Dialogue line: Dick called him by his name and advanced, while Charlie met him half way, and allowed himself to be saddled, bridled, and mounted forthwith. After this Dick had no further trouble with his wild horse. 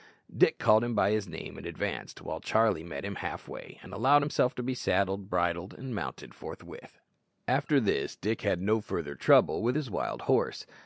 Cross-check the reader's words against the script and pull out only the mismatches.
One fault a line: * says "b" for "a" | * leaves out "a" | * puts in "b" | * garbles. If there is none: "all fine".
all fine